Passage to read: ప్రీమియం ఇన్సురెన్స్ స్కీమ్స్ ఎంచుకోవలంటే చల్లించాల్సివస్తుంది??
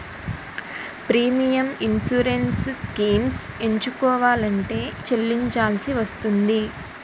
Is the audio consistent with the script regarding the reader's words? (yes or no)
yes